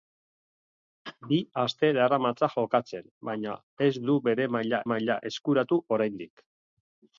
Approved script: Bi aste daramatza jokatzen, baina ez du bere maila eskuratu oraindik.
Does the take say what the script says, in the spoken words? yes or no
no